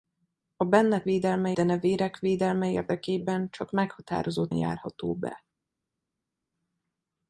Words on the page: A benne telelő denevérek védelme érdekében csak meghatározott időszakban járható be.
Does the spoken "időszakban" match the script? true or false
false